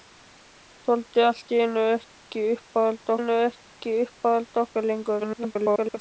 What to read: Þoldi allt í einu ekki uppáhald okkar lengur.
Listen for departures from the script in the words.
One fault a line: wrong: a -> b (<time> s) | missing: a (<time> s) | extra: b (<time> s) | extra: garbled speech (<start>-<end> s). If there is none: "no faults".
extra: einu ekki uppáhald (3.2 s)
extra: garbled speech (5.2-6.0 s)